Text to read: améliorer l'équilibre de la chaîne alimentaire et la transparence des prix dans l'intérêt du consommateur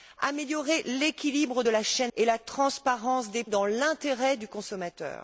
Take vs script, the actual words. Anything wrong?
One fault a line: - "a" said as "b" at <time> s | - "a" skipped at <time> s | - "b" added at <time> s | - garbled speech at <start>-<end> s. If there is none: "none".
- "alimentaire" skipped at 2.1 s
- "prix" skipped at 3.4 s